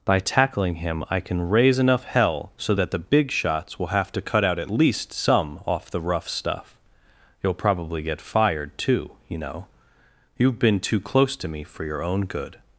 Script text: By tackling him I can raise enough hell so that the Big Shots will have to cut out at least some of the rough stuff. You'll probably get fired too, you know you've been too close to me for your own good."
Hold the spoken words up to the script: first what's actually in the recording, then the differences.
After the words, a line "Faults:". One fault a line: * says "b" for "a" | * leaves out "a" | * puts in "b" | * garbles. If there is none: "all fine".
By tackling him I can raise enough hell so that the Big Shots will have to cut out at least some off the rough stuff. You'll probably get fired too, you know you've been too close to me for your own good."
Faults:
* says "off" for "of"